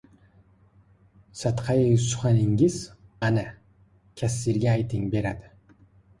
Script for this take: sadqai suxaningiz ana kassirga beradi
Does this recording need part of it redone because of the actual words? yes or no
yes